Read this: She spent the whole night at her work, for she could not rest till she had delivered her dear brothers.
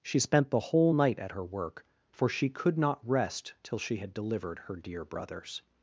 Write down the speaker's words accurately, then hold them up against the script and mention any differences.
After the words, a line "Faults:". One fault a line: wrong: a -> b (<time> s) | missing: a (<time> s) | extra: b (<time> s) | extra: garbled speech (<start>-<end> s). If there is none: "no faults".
She spent the whole night at her work, for she could not rest till she had delivered her dear brothers.
Faults:
no faults